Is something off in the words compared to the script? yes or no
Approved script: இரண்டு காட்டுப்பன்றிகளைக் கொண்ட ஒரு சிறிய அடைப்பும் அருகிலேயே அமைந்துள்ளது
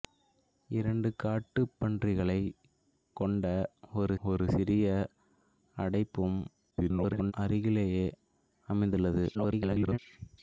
yes